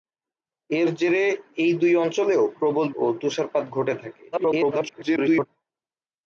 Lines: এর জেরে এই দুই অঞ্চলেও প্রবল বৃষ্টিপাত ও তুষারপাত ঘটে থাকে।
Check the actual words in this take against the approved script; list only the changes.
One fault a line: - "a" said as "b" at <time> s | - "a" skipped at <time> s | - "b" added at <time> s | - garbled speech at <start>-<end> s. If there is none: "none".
- "বৃষ্টিপাত" skipped at 2.9 s
- garbled speech at 4.3-5.5 s